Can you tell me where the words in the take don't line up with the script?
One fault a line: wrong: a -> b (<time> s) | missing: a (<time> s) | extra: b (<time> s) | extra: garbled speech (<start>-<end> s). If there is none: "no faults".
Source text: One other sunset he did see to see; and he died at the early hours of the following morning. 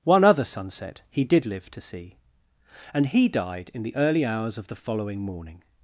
wrong: see -> live (1.4 s)
wrong: at -> in (3.7 s)